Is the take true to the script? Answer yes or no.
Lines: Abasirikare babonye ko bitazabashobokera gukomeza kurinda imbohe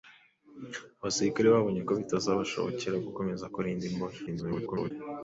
no